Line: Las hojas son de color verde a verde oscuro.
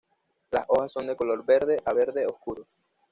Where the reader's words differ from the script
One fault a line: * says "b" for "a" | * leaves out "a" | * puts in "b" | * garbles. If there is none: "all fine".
all fine